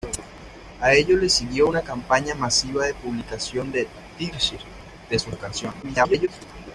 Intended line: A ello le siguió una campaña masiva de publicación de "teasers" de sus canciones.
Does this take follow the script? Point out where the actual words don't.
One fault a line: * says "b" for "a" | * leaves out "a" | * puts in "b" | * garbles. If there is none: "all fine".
* garbles